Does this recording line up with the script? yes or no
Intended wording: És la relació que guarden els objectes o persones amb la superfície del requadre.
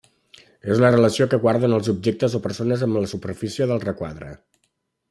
yes